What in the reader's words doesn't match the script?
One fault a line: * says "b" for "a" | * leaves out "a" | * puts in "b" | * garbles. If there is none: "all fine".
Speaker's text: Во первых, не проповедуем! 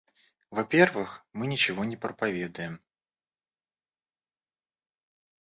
* puts in "мы ничего"